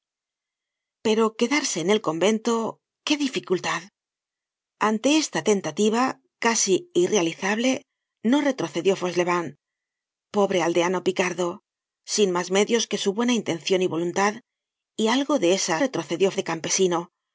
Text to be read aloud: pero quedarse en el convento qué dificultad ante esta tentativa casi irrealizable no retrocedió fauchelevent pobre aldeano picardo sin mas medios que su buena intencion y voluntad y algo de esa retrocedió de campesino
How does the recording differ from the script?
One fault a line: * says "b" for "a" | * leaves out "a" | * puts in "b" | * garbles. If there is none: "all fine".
all fine